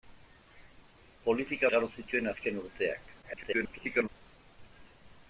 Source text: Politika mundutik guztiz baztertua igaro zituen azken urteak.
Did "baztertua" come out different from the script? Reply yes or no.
yes